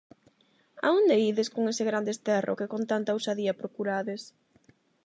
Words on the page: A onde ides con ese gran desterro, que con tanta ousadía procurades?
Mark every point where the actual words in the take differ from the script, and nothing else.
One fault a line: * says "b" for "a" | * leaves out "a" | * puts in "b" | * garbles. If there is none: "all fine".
all fine